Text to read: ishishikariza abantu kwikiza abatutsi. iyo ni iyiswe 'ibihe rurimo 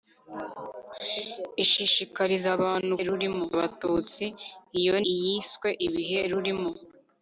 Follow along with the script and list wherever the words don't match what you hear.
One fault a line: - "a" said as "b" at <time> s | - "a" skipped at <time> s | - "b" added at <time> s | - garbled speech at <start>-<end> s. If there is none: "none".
- "kwikiza" said as "rurimo" at 3.1 s
- "ni" skipped at 5.0 s